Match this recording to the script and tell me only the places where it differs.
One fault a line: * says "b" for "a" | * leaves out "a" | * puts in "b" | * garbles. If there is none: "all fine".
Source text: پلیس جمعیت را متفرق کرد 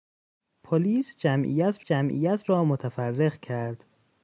* puts in "جمعیت"